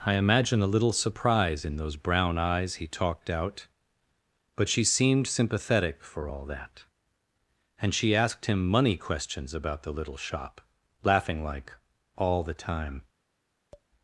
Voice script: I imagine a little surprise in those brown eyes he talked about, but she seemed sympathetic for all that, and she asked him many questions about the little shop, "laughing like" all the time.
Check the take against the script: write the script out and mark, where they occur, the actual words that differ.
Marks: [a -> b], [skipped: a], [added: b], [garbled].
I imagine a little surprise in those brown eyes he talked [about, -> out] but she seemed sympathetic for all that, and she asked him [many -> money] questions about the little shop, "laughing like" all the time.